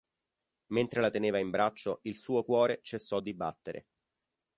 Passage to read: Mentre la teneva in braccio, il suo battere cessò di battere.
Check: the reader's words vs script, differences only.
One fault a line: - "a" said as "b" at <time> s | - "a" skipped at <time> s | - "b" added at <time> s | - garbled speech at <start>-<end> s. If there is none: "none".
- "battere" said as "cuore" at 2.4 s